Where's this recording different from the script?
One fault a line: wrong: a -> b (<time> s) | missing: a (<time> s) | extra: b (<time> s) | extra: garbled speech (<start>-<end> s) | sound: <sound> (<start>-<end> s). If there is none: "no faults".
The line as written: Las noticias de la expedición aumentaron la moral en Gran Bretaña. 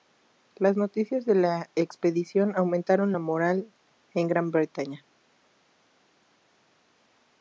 no faults